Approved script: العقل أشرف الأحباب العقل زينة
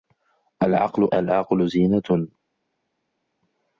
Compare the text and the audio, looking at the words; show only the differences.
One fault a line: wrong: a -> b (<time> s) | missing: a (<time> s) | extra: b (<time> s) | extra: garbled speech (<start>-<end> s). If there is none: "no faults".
missing: أشرف الأحباب (1.1 s)